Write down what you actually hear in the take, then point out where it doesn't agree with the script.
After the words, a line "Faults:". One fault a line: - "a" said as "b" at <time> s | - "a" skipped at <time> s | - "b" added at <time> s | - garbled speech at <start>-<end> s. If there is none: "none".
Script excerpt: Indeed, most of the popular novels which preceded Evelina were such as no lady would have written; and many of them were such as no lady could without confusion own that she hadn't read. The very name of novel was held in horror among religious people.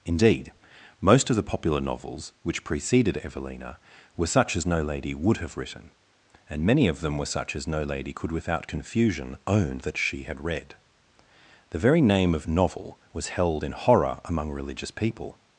Indeed, most of the popular novels which preceded Evelina were such as no lady would have written; and many of them were such as no lady could without confusion own that she had read. The very name of novel was held in horror among religious people.
Faults:
- "hadn't" said as "had" at 10.2 s